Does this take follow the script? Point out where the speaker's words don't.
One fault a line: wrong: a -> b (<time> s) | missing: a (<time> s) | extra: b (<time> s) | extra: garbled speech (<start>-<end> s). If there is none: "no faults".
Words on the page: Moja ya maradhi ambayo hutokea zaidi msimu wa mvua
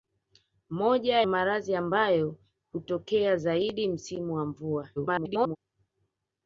missing: ya (1.2 s)
extra: garbled speech (5.0-5.6 s)